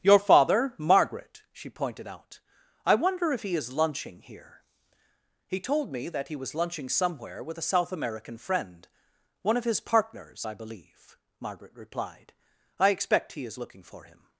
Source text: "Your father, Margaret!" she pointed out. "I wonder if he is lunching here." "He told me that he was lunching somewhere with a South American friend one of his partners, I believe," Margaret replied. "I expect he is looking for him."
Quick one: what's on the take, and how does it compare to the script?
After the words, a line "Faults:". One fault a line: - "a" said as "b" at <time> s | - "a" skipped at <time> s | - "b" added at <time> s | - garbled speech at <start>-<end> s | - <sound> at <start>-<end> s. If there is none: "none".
"Your father, Margaret!" she pointed out. "I wonder if he is lunching here." "He told me that he was lunching somewhere with a South American friend one of his partners, I believe," Margaret replied. "I expect he is looking for him."
Faults:
none